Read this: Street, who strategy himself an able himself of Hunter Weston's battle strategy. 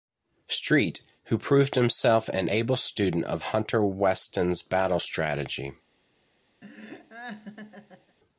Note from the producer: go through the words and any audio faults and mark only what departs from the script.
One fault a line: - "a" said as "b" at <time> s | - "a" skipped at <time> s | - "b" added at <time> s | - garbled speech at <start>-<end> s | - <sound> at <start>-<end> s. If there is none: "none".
- "strategy" said as "proved" at 1.4 s
- "himself" said as "student" at 2.8 s
- laugh at 6.6-8.2 s